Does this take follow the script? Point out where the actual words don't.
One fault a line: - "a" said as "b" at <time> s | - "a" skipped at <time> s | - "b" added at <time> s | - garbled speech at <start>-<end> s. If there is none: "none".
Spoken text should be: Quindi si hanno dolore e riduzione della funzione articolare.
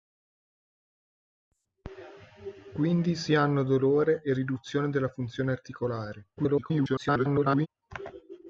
- garbled speech at 6.4-7.7 s